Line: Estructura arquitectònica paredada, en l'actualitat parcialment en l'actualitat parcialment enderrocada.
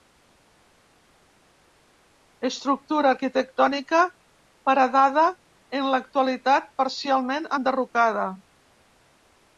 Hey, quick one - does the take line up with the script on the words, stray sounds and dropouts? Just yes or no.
no